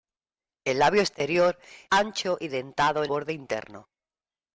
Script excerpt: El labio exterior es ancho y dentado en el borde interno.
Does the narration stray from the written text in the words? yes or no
yes